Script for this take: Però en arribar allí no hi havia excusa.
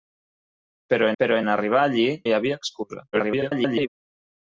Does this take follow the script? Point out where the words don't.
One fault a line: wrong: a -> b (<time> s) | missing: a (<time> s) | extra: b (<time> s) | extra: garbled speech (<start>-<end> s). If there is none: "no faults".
extra: però (1.2 s)
missing: no (2.0 s)
extra: garbled speech (3.1-3.9 s)